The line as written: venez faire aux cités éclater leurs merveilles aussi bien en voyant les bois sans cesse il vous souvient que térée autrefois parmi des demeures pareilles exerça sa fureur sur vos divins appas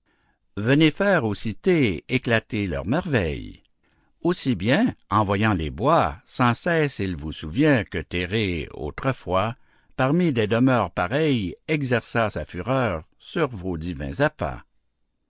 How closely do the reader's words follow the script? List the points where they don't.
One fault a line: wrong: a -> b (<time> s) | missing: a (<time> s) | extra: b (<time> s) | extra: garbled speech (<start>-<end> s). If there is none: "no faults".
no faults